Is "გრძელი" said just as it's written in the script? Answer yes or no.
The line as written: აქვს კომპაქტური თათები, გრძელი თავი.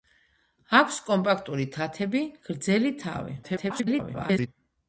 yes